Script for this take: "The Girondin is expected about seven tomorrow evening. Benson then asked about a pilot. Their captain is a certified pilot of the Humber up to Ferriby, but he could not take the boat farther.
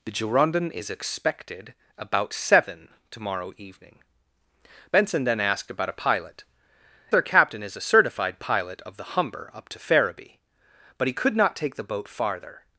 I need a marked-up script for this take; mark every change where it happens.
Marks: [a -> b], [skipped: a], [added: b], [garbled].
"The Girondin is expected about seven tomorrow evening. Benson then asked about a pilot. Their captain is a certified pilot of the Humber up to Ferriby, but he could not take the boat farther.